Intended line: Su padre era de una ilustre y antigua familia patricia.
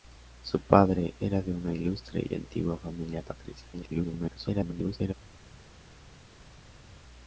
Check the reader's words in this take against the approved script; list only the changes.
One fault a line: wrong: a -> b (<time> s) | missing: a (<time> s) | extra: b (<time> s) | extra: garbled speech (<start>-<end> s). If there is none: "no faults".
extra: garbled speech (3.7-5.1 s)